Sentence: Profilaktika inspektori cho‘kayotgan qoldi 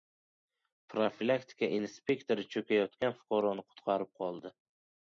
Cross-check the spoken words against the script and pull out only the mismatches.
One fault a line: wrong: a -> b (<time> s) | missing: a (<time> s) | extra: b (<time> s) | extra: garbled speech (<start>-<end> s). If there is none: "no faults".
extra: fuqaroni qutqarib (3.2 s)